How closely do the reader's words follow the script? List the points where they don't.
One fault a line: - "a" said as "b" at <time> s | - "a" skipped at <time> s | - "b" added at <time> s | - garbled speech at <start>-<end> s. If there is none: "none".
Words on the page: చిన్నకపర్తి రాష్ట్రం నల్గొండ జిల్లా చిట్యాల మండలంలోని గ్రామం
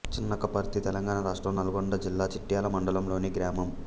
- "తెలంగాణ" added at 0.8 s